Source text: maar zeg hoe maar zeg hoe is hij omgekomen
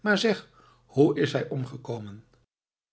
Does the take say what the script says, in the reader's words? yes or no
no